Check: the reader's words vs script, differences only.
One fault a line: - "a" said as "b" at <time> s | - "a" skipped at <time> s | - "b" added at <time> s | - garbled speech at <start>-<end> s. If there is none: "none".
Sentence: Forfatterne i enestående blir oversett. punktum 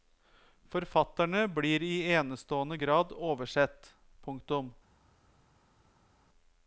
- "blir" added at 1.5 s
- "blir" said as "grad" at 2.8 s